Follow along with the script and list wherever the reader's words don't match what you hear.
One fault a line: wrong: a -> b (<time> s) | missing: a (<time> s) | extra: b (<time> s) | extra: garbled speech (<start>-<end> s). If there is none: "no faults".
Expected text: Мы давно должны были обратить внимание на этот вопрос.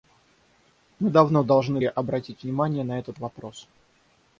missing: были (1.8 s)